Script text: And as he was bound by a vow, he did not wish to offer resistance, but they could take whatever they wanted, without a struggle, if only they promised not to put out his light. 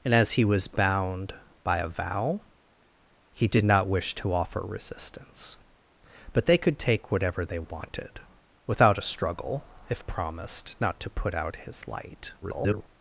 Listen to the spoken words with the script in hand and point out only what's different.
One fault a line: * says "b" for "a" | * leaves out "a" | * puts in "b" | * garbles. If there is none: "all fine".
* leaves out "only they"
* garbles